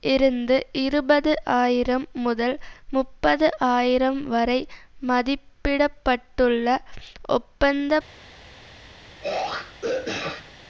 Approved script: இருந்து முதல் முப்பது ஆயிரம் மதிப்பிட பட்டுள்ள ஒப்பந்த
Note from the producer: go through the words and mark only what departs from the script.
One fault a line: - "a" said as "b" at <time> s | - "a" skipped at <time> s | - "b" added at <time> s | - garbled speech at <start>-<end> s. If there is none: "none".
- "இருபது ஆயிரம்" added at 0.8 s
- "வரை" added at 4.3 s